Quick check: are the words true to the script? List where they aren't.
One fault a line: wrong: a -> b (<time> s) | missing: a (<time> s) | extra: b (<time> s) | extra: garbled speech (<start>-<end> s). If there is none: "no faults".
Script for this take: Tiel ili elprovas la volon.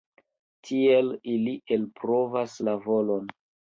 no faults